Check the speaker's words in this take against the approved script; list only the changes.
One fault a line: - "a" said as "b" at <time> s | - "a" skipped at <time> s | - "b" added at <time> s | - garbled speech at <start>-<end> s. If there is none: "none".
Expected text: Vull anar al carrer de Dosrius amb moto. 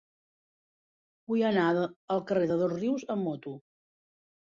none